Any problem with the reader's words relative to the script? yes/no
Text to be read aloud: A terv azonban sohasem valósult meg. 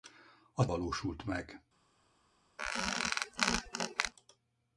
yes